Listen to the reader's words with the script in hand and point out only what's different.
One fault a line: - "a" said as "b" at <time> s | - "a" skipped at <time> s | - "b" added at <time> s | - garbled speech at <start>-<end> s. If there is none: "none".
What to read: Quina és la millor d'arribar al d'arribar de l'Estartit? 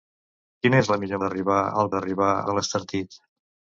none